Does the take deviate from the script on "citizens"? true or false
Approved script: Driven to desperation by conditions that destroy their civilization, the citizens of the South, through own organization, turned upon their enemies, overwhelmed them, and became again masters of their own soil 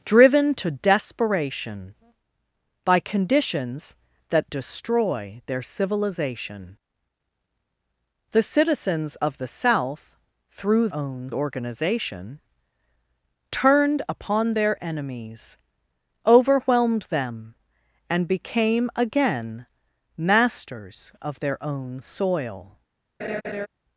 false